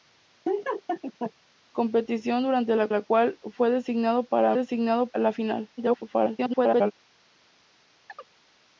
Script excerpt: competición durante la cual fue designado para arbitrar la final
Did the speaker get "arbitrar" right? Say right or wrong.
wrong